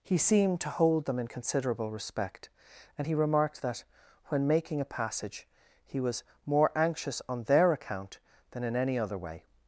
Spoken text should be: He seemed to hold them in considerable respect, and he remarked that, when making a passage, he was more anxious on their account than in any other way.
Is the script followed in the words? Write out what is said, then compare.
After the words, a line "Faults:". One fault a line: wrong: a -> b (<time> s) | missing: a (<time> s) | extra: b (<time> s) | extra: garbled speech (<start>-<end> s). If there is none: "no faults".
He seemed to hold them in considerable respect, and he remarked that, when making a passage, he was more anxious on their account than in any other way.
Faults:
no faults